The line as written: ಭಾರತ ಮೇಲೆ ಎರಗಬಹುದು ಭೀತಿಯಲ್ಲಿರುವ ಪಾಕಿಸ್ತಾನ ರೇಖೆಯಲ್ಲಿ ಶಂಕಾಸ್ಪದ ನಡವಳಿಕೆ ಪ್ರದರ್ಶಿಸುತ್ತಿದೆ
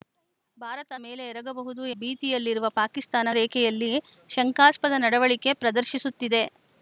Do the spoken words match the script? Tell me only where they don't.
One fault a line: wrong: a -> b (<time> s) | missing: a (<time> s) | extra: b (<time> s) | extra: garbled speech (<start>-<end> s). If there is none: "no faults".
no faults